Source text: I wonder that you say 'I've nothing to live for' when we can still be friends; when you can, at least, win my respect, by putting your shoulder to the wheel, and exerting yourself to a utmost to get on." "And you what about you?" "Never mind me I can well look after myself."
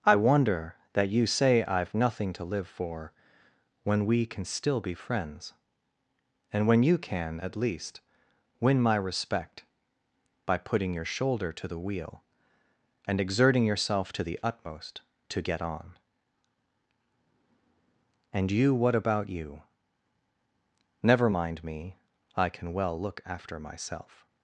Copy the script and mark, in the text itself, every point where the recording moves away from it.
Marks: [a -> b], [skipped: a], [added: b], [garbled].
I wonder that you say 'I've nothing to live for' when we can still be friends; [added: and] when you can, at least, win my respect, by putting your shoulder to the wheel, and exerting yourself to [a -> the] utmost to get on." "And you what about you?" "Never mind me I can well look after myself."